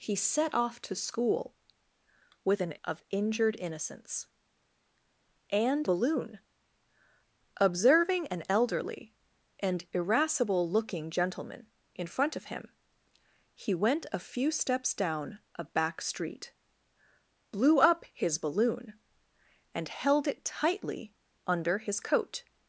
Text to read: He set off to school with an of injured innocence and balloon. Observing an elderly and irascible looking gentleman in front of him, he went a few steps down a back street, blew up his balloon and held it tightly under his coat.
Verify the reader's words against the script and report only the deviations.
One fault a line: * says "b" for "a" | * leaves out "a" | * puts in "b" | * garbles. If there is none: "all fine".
all fine